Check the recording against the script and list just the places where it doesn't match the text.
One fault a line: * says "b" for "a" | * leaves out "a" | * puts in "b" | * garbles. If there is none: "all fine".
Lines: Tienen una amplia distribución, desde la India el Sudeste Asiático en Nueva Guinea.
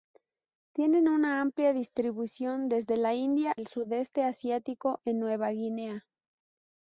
all fine